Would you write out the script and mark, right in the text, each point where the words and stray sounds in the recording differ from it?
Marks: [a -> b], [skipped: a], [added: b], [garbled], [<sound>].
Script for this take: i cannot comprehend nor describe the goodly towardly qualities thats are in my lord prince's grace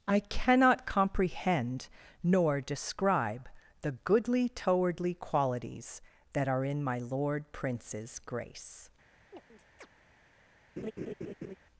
i cannot comprehend nor describe the goodly towardly qualities [thats -> that] are in my lord prince's grace [chirp] [laugh]